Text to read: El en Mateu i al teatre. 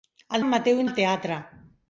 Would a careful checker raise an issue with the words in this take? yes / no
no